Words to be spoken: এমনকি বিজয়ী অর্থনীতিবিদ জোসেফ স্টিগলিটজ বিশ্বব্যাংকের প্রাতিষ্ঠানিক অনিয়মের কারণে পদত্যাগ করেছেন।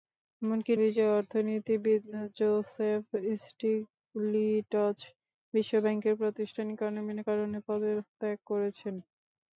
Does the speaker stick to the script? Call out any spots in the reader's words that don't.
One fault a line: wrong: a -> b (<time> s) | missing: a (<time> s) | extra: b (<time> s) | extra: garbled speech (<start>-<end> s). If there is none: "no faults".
no faults